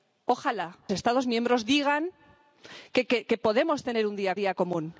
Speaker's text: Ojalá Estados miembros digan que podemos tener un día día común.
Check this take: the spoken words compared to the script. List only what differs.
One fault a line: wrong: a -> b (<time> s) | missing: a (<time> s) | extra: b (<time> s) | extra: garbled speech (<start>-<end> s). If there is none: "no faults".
no faults